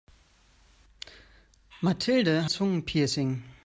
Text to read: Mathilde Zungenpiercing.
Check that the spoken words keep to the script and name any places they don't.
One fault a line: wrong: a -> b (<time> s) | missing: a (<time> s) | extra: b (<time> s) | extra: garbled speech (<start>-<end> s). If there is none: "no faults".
no faults